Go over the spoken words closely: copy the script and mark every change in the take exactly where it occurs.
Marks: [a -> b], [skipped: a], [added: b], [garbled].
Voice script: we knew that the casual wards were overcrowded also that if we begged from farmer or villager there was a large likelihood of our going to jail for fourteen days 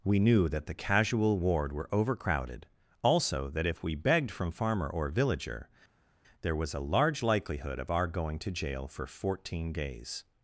we knew that the casual [wards -> ward] were overcrowded also that if we begged from farmer or villager there was a large likelihood of our going to jail for fourteen days